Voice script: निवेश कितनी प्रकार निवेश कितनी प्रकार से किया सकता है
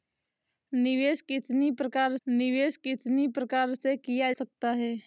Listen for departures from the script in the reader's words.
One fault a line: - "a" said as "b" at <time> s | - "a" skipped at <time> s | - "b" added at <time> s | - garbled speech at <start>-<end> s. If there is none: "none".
none